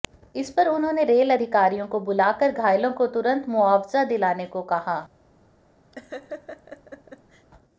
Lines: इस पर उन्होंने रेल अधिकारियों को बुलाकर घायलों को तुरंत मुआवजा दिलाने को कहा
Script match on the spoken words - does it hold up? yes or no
yes